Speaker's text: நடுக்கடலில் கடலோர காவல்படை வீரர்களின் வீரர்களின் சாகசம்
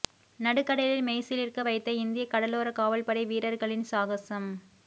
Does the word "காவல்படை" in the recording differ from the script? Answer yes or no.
no